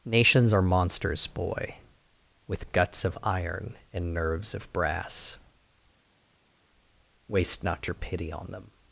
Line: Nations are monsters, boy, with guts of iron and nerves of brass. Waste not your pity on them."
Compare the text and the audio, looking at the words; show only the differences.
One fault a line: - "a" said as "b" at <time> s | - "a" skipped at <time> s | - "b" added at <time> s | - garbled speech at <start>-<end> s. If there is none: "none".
none